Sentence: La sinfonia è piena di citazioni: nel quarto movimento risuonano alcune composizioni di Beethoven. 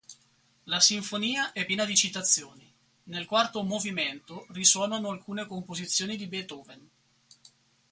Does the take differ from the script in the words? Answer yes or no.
no